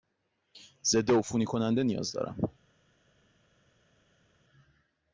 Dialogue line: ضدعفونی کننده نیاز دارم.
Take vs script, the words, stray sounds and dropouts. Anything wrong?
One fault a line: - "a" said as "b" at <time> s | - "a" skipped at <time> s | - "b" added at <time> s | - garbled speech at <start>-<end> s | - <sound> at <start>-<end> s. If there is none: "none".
none